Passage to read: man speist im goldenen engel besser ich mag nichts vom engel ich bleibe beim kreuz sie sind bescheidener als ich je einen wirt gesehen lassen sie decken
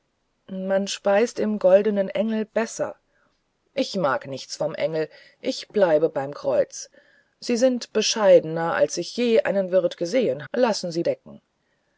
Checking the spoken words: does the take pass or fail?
pass